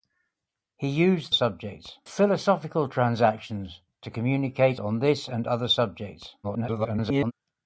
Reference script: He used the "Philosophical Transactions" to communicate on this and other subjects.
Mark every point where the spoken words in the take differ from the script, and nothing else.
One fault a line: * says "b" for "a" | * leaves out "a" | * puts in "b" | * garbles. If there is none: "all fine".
* says "subjects" for "the"
* garbles